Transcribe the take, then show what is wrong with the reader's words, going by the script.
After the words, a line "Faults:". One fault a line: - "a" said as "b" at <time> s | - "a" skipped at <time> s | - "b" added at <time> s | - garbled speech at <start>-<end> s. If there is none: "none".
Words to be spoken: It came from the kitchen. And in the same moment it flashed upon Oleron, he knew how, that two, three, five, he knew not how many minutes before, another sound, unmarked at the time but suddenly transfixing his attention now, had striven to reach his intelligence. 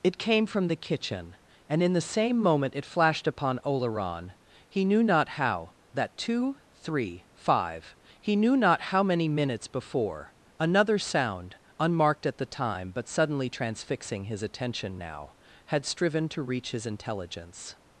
It came from the kitchen. And in the same moment it flashed upon Oleron, he knew not how, that two, three, five, he knew not how many minutes before, another sound, unmarked at the time but suddenly transfixing his attention now, had striven to reach his intelligence.
Faults:
- "not" added at 5.0 s